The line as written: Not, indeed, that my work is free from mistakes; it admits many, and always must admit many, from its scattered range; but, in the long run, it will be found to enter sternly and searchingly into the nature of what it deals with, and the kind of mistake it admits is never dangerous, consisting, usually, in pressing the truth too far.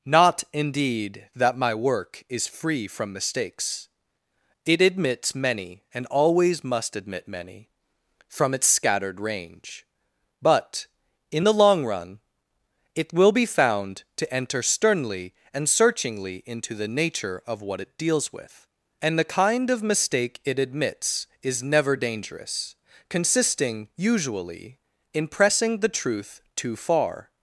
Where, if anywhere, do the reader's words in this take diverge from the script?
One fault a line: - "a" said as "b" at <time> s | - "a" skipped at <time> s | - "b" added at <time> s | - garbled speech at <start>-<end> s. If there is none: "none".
none